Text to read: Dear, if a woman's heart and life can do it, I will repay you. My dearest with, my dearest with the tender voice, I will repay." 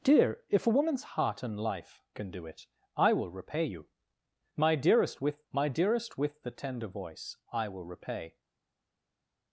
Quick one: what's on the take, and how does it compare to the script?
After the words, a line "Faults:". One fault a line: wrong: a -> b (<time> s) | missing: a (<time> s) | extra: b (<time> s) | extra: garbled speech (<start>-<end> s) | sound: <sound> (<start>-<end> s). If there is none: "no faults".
Dear, if a woman's heart and life can do it, I will repay you. My dearest with, my dearest with the tender voice, I will repay."
Faults:
no faults